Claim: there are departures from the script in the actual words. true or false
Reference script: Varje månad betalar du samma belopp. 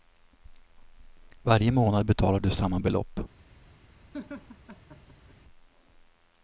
false